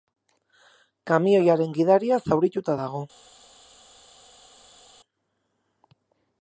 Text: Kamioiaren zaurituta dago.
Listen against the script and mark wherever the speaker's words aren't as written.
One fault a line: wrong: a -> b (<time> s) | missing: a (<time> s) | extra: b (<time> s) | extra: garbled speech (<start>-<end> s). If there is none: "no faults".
extra: gidaria (1.8 s)